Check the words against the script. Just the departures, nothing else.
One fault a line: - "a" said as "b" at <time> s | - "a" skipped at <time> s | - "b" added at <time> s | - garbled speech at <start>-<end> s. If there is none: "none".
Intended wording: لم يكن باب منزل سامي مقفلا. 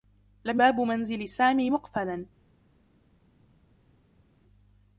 - "يكن" skipped at 0.6 s